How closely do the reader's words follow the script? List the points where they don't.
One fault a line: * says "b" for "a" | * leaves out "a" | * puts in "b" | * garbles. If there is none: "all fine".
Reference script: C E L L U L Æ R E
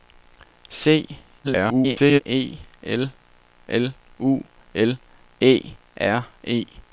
* garbles